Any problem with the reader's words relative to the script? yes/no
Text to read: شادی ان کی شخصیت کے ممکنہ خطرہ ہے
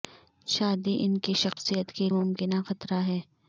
no